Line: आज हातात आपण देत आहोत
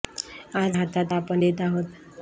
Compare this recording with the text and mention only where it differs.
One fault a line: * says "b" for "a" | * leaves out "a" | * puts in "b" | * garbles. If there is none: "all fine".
all fine